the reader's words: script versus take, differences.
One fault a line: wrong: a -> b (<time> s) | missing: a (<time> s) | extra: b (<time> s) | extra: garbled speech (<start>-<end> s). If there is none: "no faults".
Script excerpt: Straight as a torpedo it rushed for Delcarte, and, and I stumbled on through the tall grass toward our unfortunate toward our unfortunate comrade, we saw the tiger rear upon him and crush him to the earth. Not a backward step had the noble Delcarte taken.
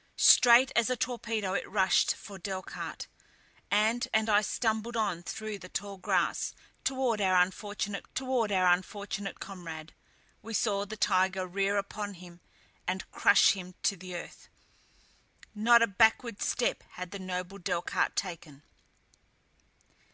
no faults